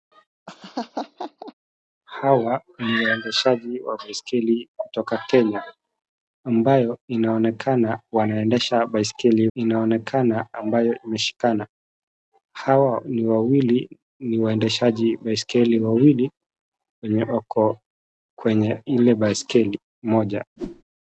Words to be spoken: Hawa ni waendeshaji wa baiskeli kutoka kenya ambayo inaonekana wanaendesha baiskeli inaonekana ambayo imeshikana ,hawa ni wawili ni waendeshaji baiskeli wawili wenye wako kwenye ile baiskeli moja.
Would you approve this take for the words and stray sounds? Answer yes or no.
no